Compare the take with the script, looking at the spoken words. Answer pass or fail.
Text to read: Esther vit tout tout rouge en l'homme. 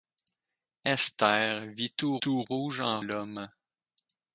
pass